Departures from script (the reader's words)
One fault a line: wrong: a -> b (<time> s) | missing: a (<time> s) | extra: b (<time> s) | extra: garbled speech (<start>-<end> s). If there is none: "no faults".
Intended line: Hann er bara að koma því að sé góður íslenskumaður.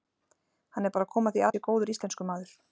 no faults